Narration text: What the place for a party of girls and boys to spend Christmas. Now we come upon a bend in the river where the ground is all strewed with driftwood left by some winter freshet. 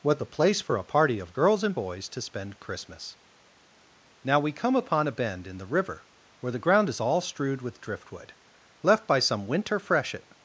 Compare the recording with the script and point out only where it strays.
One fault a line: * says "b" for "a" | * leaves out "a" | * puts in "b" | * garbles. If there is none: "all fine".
all fine